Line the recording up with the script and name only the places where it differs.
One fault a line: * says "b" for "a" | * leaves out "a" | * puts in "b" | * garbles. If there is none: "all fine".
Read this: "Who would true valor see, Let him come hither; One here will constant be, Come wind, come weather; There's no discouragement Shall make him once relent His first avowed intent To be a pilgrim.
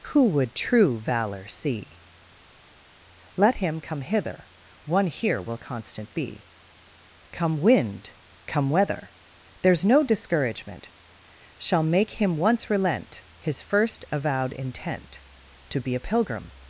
all fine